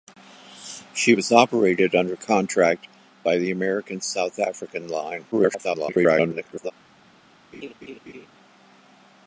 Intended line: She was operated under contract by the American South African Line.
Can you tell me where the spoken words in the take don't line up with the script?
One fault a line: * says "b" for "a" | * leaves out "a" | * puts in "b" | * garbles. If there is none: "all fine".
* garbles